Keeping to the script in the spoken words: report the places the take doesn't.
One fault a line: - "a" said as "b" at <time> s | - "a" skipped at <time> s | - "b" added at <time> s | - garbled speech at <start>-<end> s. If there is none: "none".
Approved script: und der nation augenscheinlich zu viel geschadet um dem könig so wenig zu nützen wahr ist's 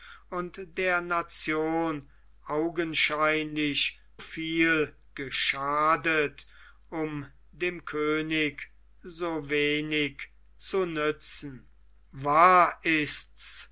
- "zu" skipped at 4.0 s